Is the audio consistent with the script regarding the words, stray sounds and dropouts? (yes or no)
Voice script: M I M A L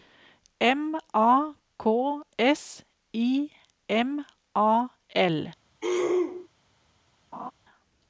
no